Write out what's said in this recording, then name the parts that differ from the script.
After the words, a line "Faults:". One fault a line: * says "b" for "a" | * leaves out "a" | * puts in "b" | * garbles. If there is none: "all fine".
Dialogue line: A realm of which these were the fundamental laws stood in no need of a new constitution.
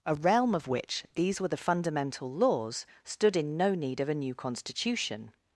A realm of which these were the fundamental laws stood in no need of a new constitution.
Faults:
all fine